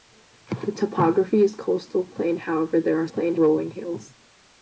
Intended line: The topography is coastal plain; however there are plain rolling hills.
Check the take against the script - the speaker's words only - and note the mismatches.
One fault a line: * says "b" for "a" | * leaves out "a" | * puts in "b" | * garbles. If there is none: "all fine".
all fine